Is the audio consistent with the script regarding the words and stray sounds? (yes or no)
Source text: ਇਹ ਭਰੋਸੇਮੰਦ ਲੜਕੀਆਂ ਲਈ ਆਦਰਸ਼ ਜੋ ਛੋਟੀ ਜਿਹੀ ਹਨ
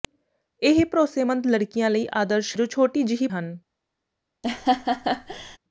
no